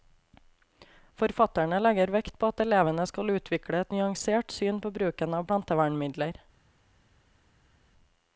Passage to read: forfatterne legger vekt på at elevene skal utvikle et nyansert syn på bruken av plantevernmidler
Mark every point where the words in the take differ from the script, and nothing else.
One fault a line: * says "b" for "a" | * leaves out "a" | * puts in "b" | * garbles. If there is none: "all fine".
all fine